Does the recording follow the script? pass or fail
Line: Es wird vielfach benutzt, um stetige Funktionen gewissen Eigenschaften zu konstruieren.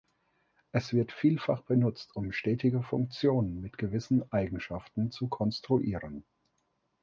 fail